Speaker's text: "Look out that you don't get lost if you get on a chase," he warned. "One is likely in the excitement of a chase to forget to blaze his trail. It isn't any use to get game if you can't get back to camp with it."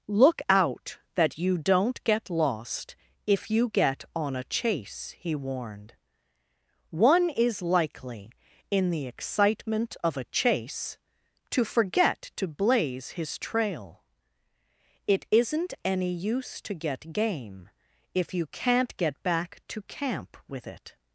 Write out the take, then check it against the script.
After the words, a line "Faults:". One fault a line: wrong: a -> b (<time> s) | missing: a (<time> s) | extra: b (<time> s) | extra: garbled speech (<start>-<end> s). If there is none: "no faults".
"Look out that you don't get lost if you get on a chase," he warned. "One is likely in the excitement of a chase to forget to blaze his trail. It isn't any use to get game if you can't get back to camp with it."
Faults:
no faults